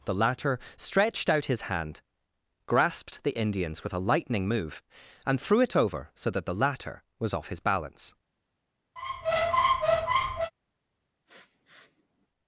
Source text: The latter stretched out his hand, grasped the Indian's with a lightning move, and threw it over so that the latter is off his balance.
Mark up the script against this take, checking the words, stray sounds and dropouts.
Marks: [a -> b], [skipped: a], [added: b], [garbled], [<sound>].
The latter stretched out his hand, grasped the Indian's with a lightning move, and threw it over so that the latter [is -> was] off his balance. [squeak] [sniff]